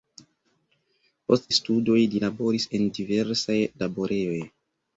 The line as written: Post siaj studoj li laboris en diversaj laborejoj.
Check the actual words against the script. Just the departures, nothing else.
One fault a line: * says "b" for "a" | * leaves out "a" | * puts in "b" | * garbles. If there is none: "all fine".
* leaves out "siaj"